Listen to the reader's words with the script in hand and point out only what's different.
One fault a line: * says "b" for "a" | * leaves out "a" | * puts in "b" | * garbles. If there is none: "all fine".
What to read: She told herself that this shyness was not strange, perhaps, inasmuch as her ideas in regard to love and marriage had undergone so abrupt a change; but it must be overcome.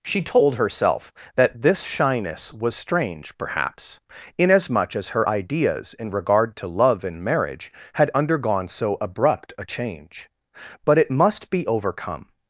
* leaves out "not"